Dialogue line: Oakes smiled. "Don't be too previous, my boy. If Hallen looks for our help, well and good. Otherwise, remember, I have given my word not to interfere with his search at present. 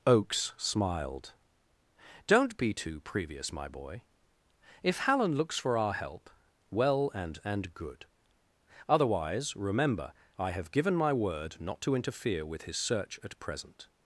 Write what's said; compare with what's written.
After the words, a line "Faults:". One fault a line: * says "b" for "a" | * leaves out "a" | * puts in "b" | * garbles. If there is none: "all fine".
Oakes smiled. "Don't be too previous, my boy. If Hallen looks for our help, well and and good. Otherwise, remember, I have given my word not to interfere with his search at present.
Faults:
* puts in "and"